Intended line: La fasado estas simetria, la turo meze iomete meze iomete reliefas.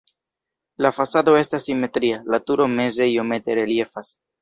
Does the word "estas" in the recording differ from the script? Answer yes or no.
no